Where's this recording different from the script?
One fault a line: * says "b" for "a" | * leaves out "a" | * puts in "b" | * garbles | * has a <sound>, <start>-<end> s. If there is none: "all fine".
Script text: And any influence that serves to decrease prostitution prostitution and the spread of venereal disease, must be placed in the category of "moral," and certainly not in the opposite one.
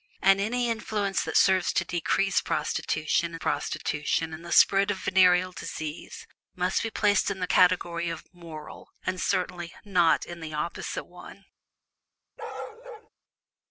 * has a bark, 12.4-13.1 s